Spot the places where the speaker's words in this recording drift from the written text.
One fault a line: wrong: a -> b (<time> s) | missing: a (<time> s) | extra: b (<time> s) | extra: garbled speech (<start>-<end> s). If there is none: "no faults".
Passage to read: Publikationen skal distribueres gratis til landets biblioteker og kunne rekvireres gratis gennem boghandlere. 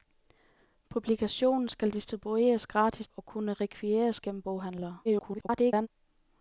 missing: til landets biblioteker (3.1 s)
missing: gratis (4.2 s)
extra: garbled speech (5.0-5.9 s)